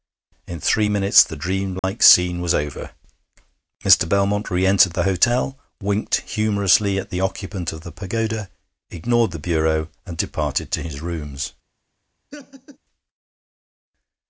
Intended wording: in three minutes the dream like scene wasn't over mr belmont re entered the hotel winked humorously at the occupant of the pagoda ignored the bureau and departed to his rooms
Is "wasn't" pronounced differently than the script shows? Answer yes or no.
yes